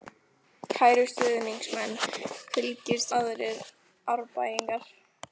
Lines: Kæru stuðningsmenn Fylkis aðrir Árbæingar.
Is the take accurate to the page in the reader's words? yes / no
yes